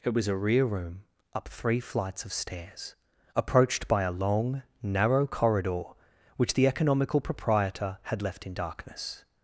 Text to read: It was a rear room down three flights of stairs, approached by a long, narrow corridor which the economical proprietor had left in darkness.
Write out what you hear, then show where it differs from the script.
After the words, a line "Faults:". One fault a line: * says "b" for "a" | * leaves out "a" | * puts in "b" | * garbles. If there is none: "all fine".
It was a rear room up three flights of stairs, approached by a long, narrow corridor which the economical proprietor had left in darkness.
Faults:
* says "up" for "down"